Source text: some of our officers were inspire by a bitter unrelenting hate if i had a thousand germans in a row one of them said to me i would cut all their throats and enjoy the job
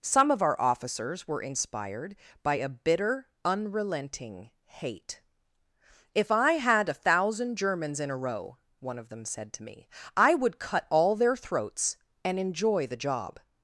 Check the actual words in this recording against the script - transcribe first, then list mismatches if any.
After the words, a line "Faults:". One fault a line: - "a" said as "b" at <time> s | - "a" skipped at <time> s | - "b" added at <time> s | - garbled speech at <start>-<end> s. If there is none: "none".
some of our officers were inspired by a bitter unrelenting hate if i had a thousand germans in a row one of them said to me i would cut all their throats and enjoy the job
Faults:
- "inspire" said as "inspired" at 1.4 s